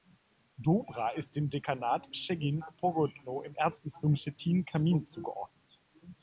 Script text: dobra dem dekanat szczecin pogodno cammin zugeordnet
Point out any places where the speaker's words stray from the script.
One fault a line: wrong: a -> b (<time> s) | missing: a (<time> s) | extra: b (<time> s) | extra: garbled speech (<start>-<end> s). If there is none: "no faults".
extra: ist (1.1 s)
extra: im erzbistum stettin (3.4 s)